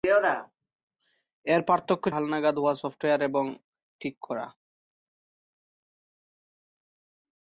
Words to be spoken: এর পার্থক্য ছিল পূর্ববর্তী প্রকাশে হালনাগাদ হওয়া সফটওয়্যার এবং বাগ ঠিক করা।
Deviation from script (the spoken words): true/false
true